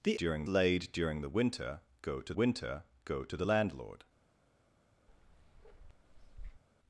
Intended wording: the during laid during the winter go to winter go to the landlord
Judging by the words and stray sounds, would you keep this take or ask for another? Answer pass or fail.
fail